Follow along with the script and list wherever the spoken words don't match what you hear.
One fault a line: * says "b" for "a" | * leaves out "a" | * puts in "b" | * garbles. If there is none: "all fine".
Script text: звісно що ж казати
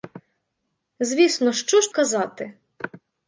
all fine